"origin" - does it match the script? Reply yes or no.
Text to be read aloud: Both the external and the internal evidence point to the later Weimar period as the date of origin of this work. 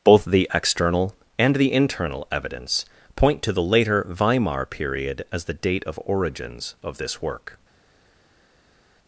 no